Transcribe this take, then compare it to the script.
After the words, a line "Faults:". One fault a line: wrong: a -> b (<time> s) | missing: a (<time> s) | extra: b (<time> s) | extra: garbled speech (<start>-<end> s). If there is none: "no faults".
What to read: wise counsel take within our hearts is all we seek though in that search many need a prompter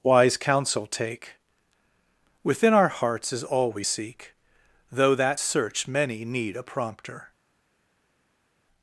wise counsel take within our hearts is all we seek though that search many need a prompter
Faults:
missing: in (5.2 s)